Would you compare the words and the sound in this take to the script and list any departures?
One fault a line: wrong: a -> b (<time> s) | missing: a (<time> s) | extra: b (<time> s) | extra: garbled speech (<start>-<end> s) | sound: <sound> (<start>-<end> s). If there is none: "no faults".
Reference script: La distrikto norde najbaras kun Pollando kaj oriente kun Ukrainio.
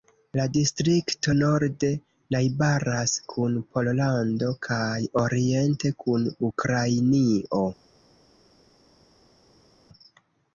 no faults